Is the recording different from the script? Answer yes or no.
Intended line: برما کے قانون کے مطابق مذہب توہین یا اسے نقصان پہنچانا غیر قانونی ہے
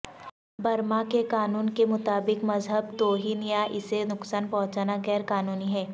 no